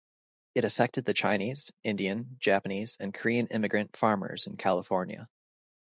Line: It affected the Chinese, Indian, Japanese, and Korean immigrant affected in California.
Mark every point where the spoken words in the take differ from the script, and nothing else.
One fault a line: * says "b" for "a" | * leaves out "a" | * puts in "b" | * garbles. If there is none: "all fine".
* says "farmers" for "affected"